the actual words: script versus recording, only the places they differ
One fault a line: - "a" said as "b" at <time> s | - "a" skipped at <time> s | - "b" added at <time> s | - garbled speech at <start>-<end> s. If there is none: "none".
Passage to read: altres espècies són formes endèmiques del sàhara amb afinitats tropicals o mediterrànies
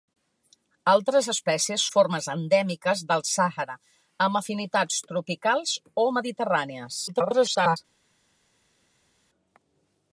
- "són" skipped at 1.8 s
- garbled speech at 7.1-7.8 s